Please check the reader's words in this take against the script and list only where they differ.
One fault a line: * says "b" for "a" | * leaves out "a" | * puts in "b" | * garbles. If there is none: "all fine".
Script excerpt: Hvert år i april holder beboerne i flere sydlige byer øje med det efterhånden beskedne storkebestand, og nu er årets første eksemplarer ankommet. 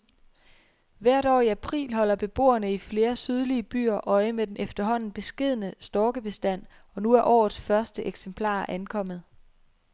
* says "den" for "det"